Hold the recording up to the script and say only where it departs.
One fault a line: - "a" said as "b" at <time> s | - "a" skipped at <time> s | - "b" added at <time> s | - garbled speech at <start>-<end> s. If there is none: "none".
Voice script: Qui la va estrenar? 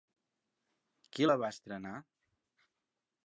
none